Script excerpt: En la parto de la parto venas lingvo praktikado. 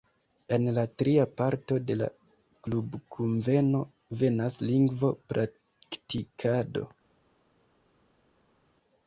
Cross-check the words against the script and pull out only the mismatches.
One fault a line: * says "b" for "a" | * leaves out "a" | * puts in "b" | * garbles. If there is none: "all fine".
* puts in "tria"
* says "klubkunveno" for "parto"